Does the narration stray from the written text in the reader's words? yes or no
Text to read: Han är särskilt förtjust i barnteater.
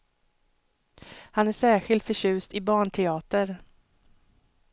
no